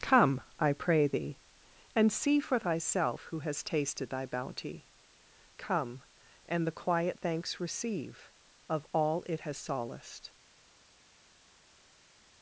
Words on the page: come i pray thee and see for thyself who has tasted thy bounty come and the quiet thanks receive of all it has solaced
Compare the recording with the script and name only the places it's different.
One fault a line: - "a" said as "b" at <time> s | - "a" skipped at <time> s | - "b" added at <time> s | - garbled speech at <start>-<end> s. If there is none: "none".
none